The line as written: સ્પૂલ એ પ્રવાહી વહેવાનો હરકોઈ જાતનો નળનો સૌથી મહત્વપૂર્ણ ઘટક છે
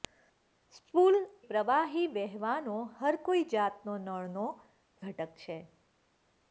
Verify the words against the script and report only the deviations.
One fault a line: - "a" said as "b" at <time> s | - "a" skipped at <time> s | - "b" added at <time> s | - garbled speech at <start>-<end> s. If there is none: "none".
- "એ" skipped at 1.2 s
- "સૌથી મહત્વપૂર્ણ" skipped at 4.5 s